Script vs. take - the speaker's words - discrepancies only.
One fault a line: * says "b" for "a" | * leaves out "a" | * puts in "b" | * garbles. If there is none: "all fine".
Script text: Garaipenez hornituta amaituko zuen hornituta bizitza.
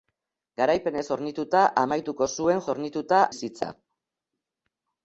all fine